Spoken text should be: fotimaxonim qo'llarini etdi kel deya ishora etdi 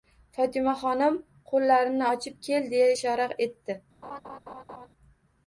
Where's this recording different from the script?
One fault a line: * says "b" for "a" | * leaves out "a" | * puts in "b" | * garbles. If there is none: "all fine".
* says "ochib" for "etdi"